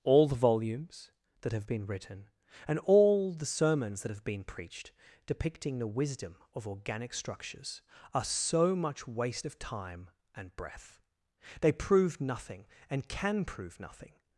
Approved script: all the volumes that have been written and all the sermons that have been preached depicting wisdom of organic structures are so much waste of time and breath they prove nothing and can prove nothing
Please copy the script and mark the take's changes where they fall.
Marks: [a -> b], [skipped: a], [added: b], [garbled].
all the volumes that have been written and all the sermons that have been preached depicting [added: the] wisdom of organic structures are so much waste of time and breath they prove nothing and can prove nothing